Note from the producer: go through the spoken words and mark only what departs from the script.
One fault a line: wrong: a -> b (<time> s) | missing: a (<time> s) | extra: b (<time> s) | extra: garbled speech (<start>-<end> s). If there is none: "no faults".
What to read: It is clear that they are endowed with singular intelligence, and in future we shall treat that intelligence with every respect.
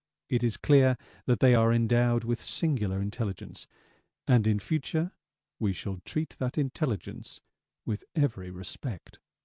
no faults